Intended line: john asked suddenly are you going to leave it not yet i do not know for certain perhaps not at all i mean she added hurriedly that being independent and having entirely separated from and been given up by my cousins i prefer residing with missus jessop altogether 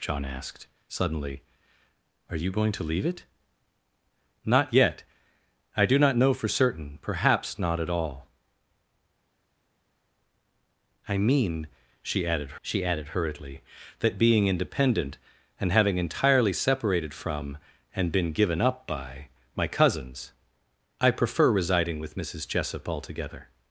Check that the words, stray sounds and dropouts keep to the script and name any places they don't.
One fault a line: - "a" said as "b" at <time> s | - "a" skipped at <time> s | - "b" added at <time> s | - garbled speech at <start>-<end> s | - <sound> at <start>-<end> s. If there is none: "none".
- "she added" added at 12.6 s